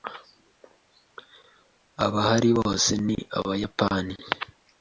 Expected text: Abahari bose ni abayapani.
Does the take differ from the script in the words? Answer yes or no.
no